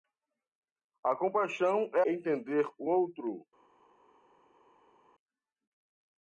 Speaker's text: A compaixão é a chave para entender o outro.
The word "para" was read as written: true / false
false